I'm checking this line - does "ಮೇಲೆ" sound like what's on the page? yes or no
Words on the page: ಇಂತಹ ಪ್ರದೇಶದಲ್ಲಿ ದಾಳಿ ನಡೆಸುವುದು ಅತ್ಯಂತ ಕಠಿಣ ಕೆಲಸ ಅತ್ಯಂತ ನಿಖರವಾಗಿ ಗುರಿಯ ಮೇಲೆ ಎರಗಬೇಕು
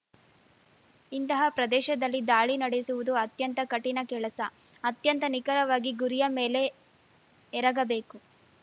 yes